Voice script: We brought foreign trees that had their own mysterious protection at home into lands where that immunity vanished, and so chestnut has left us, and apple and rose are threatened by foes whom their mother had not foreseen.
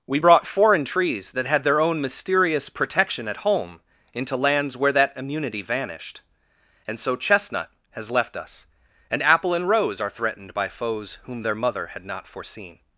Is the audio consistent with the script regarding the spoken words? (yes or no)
yes